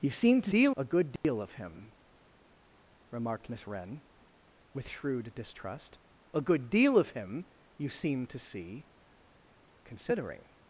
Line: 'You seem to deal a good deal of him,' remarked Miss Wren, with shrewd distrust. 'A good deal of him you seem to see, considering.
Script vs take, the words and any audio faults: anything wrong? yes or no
yes